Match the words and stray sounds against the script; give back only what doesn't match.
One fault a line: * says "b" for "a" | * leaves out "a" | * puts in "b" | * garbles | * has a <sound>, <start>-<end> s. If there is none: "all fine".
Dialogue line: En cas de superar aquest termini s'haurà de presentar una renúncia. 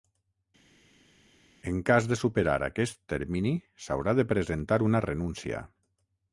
all fine